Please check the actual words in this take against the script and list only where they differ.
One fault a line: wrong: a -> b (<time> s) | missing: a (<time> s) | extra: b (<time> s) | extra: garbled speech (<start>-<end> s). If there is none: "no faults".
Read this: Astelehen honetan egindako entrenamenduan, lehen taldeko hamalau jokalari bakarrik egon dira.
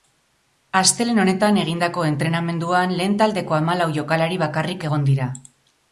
no faults